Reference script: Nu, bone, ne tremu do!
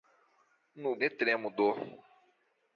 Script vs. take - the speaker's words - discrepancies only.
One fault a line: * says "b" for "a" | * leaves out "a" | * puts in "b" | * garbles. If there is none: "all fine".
* leaves out "bone"